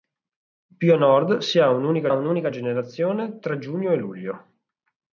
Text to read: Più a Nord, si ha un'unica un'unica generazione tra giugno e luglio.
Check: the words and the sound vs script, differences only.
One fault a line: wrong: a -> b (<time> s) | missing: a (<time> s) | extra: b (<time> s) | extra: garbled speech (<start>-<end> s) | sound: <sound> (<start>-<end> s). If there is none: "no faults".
no faults